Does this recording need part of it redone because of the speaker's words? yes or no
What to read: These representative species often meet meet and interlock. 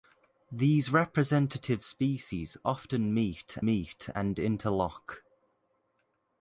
no